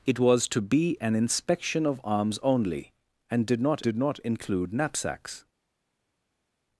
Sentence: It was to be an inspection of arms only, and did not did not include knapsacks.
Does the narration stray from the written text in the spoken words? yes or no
no